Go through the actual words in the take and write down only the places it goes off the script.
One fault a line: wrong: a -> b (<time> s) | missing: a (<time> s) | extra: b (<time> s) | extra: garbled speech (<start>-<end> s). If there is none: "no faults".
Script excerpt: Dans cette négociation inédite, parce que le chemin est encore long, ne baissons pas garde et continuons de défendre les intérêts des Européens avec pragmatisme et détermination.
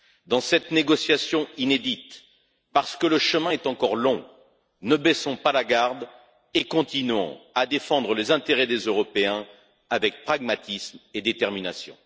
extra: la (5.5 s)
wrong: de -> à (7.5 s)